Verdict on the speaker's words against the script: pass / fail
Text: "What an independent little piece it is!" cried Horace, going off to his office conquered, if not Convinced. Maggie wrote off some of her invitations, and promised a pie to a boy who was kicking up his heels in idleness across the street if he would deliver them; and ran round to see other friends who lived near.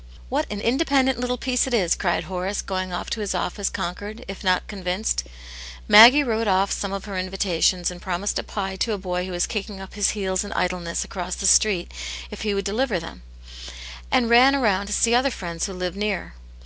pass